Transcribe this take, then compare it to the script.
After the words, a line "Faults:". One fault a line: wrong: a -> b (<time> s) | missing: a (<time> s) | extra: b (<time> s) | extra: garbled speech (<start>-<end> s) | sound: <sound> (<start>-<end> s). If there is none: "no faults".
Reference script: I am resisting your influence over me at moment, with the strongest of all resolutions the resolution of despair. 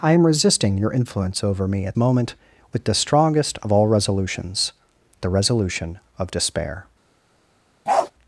I am resisting your influence over me at moment, with the strongest of all resolutions the resolution of despair.
Faults:
sound: bark (7.9-8.1 s)